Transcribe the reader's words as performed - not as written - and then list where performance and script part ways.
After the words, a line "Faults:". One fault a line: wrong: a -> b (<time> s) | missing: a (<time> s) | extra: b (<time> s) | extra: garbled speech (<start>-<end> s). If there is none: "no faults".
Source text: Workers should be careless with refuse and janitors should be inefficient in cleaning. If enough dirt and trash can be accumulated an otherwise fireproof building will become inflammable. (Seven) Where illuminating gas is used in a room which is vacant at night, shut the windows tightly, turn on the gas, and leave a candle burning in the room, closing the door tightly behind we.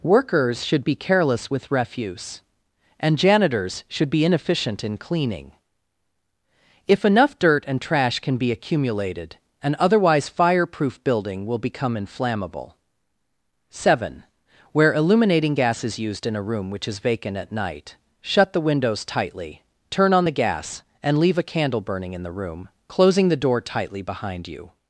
Workers should be careless with refuse and janitors should be inefficient in cleaning. If enough dirt and trash can be accumulated an otherwise fireproof building will become inflammable. (Seven) Where illuminating gas is used in a room which is vacant at night, shut the windows tightly, turn on the gas, and leave a candle burning in the room, closing the door tightly behind you.
Faults:
wrong: we -> you (24.5 s)